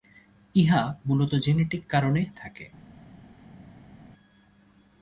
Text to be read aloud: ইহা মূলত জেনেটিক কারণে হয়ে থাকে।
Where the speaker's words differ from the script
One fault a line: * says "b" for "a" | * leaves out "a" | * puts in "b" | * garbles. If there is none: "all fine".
* leaves out "হয়ে"